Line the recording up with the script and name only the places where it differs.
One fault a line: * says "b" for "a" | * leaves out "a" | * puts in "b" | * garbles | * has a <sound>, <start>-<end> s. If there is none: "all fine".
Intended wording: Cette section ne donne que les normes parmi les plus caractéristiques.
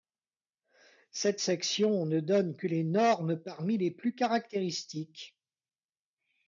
all fine